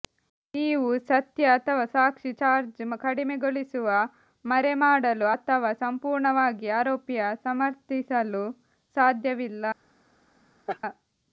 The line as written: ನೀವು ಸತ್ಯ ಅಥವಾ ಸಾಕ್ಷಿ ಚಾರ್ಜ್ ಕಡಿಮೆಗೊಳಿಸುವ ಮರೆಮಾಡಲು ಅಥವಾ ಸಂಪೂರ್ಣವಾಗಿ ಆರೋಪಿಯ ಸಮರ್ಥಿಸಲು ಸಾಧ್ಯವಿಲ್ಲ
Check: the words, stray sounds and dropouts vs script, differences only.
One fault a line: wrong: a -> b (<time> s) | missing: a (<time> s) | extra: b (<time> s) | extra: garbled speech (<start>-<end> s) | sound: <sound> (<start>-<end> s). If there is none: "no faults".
sound: laugh (10.7-10.8 s)